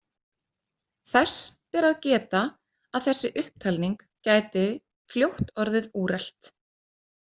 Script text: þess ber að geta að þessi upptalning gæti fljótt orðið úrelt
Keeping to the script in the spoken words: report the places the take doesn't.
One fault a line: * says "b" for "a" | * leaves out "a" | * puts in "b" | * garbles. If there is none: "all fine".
all fine